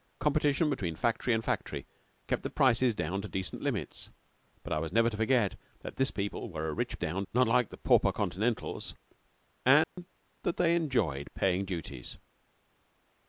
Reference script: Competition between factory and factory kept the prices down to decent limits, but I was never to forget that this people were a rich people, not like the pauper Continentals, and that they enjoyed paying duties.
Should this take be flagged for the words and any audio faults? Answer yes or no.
yes